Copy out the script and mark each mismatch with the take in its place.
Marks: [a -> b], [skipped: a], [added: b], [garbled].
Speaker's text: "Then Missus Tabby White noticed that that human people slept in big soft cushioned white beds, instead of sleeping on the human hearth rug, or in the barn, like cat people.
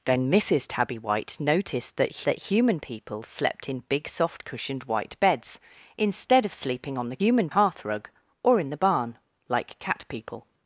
"Then Missus Tabby White noticed that that human people slept in big soft cushioned white beds, instead of sleeping on the human hearth rug, or in the barn, like cat people.